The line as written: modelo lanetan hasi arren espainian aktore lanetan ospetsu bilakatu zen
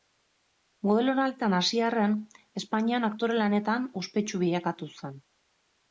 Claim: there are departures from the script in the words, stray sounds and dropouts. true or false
false